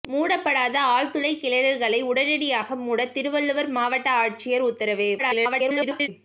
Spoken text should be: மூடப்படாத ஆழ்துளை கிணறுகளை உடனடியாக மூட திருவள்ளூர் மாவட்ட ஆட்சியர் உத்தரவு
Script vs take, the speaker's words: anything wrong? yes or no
yes